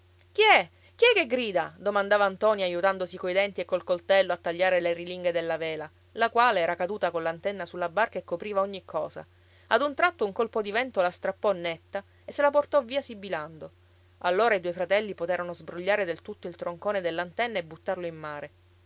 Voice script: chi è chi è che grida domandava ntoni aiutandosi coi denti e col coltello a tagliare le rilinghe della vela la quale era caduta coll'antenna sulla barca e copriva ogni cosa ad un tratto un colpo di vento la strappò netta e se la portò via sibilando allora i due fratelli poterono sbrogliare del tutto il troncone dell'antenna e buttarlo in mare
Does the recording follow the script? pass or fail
pass